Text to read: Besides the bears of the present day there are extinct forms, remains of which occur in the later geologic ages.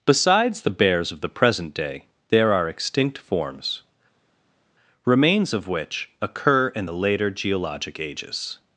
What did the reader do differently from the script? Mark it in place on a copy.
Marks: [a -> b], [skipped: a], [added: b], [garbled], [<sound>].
Besides the bears of the present day there are extinct forms, remains of which occur in the later geologic ages.